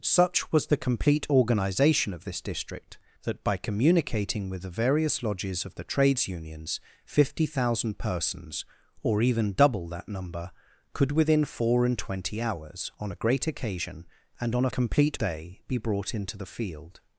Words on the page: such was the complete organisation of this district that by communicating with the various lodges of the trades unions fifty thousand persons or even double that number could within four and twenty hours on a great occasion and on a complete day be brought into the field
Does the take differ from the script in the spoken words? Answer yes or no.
no